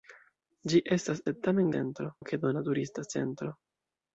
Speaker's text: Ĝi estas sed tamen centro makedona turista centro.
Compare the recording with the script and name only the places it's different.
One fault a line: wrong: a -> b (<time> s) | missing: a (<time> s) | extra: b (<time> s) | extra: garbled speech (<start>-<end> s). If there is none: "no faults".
no faults